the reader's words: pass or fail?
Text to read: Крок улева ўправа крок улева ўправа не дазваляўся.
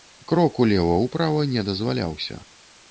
fail